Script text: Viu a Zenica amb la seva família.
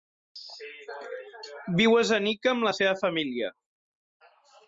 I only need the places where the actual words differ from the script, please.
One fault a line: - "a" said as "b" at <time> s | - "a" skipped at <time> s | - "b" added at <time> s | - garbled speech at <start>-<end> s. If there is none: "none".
none